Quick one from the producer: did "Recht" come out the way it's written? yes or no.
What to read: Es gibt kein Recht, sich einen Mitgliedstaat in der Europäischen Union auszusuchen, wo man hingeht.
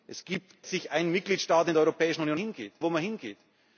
no